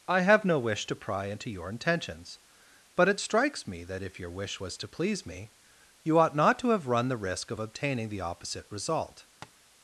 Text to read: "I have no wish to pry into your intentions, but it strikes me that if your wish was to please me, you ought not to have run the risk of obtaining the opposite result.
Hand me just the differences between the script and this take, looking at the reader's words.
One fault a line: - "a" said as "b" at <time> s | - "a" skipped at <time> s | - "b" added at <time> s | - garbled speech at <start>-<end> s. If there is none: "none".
none